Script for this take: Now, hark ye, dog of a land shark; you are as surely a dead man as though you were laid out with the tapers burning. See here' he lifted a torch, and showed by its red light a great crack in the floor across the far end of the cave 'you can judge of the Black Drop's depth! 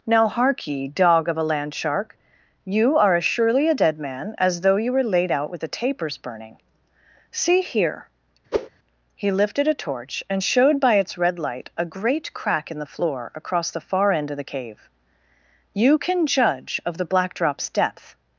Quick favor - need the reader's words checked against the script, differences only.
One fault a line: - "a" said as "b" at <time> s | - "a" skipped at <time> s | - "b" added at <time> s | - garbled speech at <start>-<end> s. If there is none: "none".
none